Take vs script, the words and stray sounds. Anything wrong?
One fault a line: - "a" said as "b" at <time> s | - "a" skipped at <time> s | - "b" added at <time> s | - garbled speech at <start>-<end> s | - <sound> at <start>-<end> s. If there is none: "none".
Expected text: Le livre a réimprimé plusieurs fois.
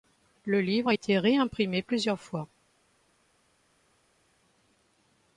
- "été" added at 0.9 s